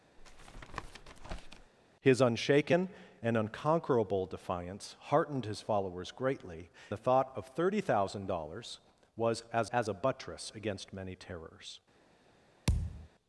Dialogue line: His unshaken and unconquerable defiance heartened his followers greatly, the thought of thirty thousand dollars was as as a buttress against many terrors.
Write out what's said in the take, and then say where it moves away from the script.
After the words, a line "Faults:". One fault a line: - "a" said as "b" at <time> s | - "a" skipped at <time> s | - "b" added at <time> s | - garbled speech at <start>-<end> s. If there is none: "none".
His unshaken and unconquerable defiance heartened his followers greatly, the thought of thirty thousand dollars was as as a buttress against many terrors.
Faults:
none